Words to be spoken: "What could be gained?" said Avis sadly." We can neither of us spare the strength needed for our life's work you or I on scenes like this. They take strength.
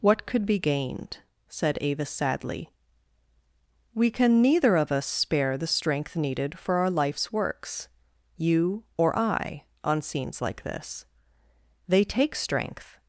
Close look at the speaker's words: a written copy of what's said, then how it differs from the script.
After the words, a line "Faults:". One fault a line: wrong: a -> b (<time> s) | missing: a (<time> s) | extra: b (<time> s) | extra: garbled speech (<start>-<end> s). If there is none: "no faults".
"What could be gained?" said Avis sadly." We can neither of us spare the strength needed for our life's works you or I on scenes like this. They take strength.
Faults:
wrong: work -> works (7.3 s)